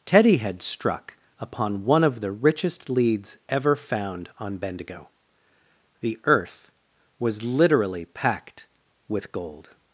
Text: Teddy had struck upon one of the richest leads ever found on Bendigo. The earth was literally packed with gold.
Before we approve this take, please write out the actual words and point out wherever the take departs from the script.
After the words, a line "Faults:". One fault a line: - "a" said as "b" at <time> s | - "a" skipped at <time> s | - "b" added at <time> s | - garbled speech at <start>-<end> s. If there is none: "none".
Teddy had struck upon one of the richest leads ever found on Bendigo. The earth was literally packed with gold.
Faults:
none